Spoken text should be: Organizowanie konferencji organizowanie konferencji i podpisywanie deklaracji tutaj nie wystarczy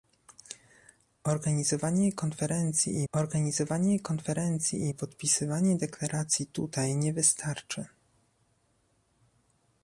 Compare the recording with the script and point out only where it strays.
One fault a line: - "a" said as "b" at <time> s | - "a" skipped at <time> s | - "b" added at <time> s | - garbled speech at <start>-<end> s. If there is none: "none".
none